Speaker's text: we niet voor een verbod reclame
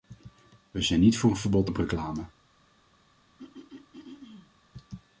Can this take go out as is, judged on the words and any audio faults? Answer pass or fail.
fail